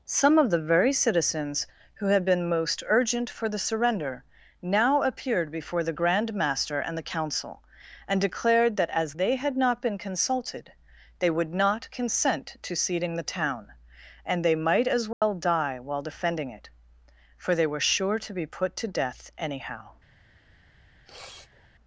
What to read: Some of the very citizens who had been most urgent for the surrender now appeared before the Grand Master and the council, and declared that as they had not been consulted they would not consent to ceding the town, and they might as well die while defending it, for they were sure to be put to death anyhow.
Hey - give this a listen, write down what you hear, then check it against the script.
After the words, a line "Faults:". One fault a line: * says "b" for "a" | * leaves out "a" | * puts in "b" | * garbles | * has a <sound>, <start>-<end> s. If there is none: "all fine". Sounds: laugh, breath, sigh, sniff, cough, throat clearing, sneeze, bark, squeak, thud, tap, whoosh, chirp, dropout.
Some of the very citizens who had been most urgent for the surrender now appeared before the Grand Master and the council, and declared that as they had not been consulted they would not consent to ceding the town, and they might as well die while defending it, for they were sure to be put to death anyhow.
Faults:
* has a dropout, 15.1-15.2 s
* has a sniff, 20.9-21.7 s